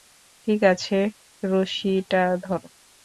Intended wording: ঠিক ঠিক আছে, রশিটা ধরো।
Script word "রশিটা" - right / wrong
right